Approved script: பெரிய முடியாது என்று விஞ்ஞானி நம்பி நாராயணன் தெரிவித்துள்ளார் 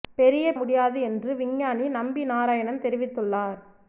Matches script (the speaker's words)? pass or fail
pass